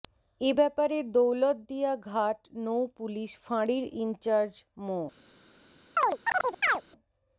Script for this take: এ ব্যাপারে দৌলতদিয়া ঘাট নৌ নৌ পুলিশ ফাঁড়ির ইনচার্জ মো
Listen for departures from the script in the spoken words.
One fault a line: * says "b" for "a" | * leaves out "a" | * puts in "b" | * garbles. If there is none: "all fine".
* leaves out "নৌ"